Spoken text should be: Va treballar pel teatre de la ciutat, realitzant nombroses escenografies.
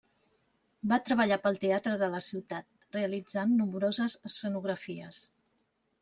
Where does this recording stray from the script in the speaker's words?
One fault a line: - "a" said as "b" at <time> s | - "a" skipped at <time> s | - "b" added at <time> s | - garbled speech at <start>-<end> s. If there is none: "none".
none